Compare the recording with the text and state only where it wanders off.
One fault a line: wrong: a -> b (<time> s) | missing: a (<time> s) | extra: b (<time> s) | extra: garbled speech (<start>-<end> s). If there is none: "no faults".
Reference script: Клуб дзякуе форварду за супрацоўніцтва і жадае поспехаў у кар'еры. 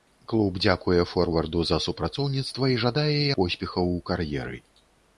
no faults